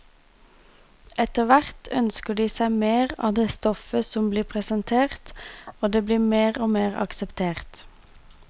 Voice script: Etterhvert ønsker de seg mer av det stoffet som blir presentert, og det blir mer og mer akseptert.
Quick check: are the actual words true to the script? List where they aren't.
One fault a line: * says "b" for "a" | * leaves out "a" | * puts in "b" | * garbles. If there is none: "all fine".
all fine